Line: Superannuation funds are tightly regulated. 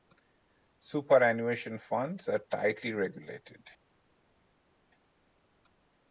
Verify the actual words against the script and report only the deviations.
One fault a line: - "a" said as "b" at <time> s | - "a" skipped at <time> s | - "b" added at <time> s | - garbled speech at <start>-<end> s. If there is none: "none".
none